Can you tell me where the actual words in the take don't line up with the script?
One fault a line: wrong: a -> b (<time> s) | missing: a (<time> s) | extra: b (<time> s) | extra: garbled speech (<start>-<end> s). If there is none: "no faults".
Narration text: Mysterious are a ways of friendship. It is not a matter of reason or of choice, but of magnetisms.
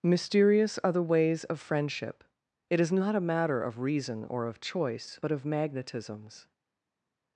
wrong: a -> the (0.9 s)